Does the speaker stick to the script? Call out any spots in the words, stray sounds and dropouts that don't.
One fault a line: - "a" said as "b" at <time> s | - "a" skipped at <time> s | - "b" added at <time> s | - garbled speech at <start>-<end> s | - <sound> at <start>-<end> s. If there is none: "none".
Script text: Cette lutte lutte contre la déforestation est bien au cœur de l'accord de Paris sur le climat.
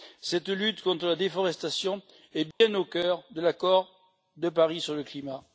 - "lutte" skipped at 0.8 s
- dropout at 2.5-2.6 s